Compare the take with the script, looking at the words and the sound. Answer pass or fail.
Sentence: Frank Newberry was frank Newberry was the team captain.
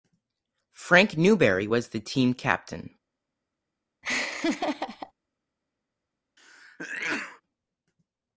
fail